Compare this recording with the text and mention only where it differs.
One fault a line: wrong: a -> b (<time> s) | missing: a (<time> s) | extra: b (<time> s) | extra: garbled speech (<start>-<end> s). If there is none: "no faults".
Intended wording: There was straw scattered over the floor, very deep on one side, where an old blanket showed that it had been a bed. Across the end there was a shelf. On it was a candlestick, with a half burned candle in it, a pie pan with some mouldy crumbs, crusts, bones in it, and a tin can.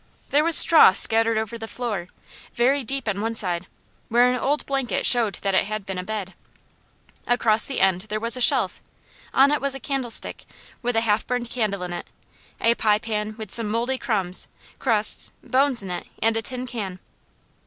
no faults